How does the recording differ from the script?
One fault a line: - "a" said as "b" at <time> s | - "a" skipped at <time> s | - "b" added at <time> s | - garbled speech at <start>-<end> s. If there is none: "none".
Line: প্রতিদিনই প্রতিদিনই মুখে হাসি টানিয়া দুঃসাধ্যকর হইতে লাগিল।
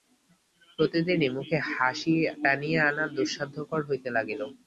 - "প্রতিদিনই" skipped at 1.3 s
- "আনা" added at 2.9 s